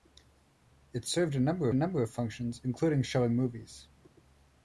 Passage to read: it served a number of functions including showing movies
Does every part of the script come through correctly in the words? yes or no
no